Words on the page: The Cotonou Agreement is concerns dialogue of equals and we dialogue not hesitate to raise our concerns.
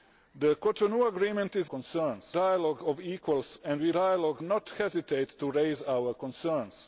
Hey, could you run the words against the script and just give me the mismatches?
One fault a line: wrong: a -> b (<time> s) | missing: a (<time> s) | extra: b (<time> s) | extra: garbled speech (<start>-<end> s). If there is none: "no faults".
no faults